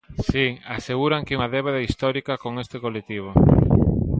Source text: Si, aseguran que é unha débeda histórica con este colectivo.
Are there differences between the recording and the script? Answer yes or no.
no